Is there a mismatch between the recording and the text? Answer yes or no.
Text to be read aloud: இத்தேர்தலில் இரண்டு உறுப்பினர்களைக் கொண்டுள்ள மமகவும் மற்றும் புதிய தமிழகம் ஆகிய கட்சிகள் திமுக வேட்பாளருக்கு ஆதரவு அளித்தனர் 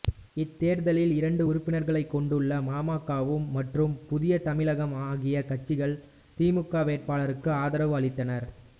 no